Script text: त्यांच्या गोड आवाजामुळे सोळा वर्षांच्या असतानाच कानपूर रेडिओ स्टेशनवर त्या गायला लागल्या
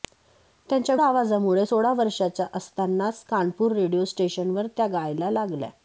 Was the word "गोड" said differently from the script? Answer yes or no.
yes